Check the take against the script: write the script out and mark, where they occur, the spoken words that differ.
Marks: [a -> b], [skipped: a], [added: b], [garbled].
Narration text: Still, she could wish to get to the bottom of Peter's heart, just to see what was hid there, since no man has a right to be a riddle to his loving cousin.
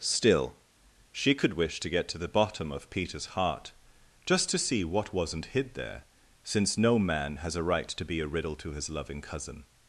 Still, she could wish to get to the bottom of Peter's heart, just to see what [was -> wasn't] hid there, since no man has a right to be a riddle to his loving cousin.